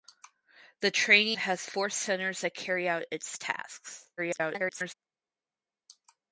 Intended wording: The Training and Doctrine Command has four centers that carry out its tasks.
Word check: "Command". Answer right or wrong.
wrong